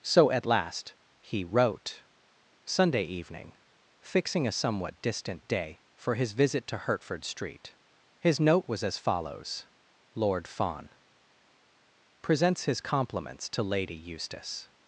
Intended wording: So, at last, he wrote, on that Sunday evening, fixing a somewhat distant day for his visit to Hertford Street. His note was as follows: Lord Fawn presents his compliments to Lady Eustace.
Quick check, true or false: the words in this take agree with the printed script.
false